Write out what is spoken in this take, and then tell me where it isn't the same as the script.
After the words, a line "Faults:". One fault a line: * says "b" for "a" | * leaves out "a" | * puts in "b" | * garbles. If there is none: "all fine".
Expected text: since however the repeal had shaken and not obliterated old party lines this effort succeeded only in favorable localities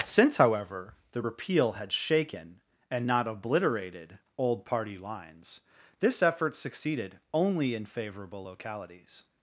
since however the repeal had shaken and not obliterated old party lines this effort succeeded only in favorable localities
Faults:
all fine